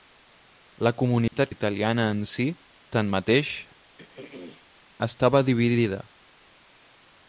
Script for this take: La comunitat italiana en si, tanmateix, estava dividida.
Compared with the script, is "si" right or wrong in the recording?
right